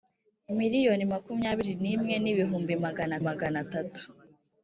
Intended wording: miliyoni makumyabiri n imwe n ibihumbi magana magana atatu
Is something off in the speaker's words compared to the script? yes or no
no